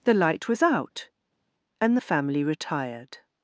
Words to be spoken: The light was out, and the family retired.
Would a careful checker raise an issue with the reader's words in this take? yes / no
no